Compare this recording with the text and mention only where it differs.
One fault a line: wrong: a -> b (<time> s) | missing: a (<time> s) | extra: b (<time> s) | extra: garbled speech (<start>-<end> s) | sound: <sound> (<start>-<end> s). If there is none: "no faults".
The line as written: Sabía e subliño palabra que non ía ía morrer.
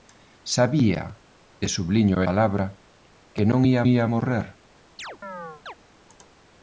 sound: chirp (5.0-5.7 s)